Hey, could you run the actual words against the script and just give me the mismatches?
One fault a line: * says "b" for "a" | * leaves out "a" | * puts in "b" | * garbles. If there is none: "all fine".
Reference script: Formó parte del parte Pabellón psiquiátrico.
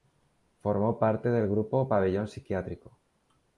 * says "grupo" for "parte"